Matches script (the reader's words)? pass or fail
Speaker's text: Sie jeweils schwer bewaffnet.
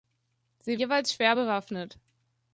pass